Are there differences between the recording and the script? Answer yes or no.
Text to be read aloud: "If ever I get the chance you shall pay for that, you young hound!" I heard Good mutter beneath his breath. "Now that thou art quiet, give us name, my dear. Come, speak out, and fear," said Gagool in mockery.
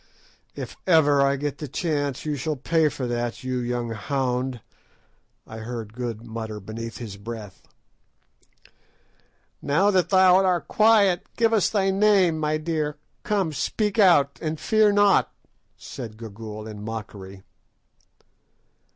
yes